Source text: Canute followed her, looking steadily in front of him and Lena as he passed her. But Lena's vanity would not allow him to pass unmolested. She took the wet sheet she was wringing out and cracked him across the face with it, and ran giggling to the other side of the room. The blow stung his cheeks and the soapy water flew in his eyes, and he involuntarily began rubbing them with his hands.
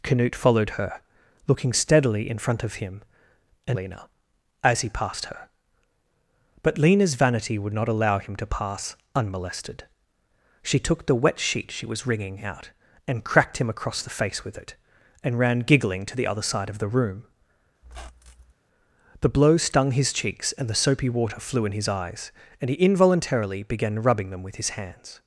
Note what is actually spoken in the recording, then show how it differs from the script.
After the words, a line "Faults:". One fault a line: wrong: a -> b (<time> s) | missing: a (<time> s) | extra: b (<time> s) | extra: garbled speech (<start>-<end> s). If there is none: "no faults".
Canute followed her, looking steadily in front of him and Lena as he passed her. But Lena's vanity would not allow him to pass unmolested. She took the wet sheet she was wringing out and cracked him across the face with it, and ran giggling to the other side of the room. The blow stung his cheeks and the soapy water flew in his eyes, and he involuntarily began rubbing them with his hands.
Faults:
no faults